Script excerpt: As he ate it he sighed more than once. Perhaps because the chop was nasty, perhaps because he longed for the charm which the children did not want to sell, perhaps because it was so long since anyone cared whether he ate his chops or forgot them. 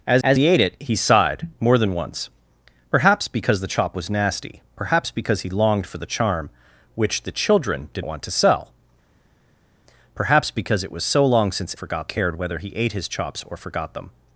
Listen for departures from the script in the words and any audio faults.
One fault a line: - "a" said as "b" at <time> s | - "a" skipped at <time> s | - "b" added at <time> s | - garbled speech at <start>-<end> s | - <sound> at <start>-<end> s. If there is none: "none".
- "as" added at 0.2 s
- "not" skipped at 8.0 s
- "anyone" said as "forgot" at 11.7 s